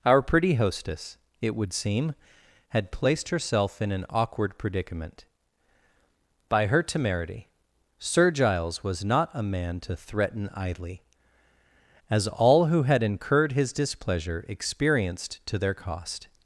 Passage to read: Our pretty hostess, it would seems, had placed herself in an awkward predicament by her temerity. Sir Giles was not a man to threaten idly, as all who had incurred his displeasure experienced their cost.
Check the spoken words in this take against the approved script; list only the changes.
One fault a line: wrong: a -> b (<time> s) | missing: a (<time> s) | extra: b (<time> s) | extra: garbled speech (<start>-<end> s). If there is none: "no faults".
wrong: seems -> seem (1.7 s)
extra: to (15.4 s)